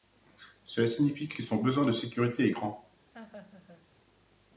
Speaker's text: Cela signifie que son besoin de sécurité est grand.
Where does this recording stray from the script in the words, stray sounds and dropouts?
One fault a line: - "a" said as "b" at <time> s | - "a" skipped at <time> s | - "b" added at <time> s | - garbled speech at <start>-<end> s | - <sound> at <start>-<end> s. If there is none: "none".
- "que" added at 1.3 s
- laugh at 3.1-3.9 s